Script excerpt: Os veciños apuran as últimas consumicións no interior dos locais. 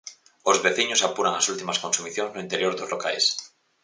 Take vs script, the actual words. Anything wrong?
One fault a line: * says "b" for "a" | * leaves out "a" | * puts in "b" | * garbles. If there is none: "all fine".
all fine